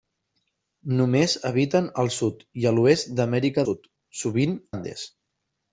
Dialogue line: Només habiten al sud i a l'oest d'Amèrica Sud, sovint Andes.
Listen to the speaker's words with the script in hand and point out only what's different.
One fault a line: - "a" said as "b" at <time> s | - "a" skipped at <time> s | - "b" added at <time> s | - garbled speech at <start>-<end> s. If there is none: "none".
none